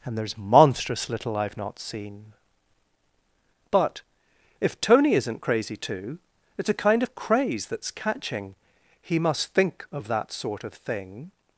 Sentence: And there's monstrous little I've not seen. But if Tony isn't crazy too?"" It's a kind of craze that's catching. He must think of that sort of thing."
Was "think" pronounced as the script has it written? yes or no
yes